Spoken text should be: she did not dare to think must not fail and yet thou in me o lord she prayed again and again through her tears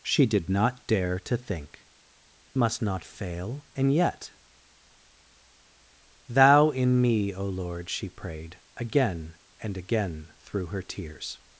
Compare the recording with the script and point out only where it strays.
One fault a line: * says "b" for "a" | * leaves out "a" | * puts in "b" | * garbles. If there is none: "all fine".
all fine